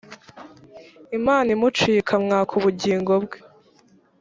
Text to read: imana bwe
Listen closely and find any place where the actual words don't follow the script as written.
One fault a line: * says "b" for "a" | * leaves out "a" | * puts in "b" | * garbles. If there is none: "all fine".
* puts in "imuciye ikamwaka ubugingo"